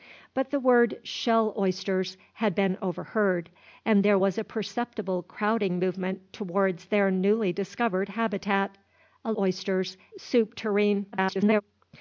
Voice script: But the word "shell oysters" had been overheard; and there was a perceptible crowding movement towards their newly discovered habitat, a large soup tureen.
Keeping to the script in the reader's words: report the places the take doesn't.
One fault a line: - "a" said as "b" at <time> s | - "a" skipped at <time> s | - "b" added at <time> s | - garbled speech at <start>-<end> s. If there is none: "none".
- "large" said as "oysters" at 9.3 s
- garbled speech at 11.1-11.6 s